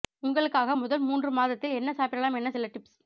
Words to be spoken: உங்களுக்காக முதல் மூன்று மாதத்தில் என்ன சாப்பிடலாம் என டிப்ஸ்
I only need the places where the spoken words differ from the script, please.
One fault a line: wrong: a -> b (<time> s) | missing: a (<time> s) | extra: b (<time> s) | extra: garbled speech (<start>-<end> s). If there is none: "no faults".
extra: சில (2.5 s)